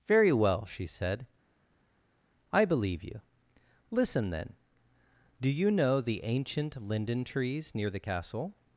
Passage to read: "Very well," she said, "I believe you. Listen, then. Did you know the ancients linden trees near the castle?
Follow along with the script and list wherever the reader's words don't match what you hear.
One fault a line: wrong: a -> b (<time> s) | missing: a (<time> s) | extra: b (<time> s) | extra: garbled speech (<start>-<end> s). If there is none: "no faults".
wrong: Did -> Do (5.4 s)
wrong: ancients -> ancient (6.2 s)